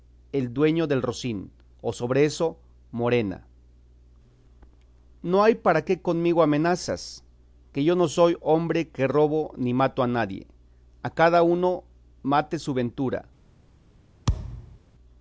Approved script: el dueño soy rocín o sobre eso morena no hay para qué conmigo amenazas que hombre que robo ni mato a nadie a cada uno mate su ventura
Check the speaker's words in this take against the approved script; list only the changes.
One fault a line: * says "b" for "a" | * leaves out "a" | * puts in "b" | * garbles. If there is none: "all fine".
* says "del" for "soy"
* puts in "yo no soy"